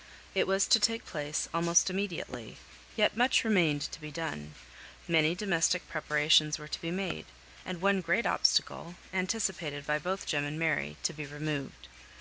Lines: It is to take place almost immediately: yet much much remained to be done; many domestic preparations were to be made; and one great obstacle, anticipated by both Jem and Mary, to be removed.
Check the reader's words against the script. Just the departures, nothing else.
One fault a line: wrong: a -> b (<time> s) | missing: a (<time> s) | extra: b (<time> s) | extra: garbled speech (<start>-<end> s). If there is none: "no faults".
wrong: is -> was (0.5 s)
missing: much (3.4 s)